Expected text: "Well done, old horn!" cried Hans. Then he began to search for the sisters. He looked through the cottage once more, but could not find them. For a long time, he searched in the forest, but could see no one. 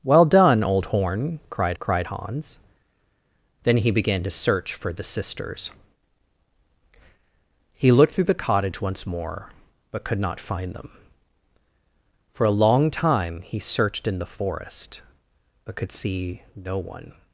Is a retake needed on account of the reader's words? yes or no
yes